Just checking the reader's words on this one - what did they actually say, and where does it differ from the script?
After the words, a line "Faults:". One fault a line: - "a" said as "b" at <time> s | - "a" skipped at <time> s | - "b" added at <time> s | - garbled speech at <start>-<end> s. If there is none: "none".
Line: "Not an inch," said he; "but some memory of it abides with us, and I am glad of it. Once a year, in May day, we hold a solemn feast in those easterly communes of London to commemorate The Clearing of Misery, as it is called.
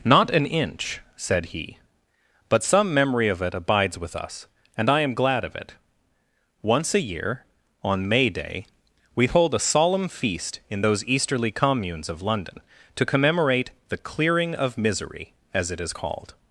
"Not an inch," said he; "but some memory of it abides with us, and I am glad of it. Once a year, on May day, we hold a solemn feast in those easterly communes of London to commemorate The Clearing of Misery, as it is called.
Faults:
- "in" said as "on" at 7.8 s